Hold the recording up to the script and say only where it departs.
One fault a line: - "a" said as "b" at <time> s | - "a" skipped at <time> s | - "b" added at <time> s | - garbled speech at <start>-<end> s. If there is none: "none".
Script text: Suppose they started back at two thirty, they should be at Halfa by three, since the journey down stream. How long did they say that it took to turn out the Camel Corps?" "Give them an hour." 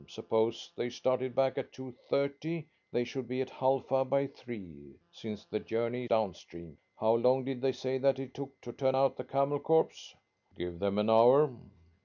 none